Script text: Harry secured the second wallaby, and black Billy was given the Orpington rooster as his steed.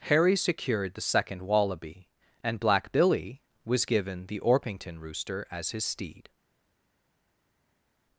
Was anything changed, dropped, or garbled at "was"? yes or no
no